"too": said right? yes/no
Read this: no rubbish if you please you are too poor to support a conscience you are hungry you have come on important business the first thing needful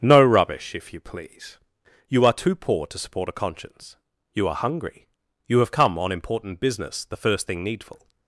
yes